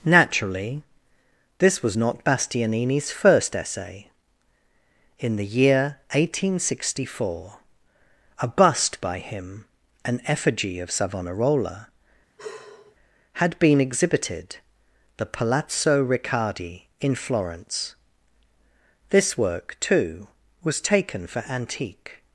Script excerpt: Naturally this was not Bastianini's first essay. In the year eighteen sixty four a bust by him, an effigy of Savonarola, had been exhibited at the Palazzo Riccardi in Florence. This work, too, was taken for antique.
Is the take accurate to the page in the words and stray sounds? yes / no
no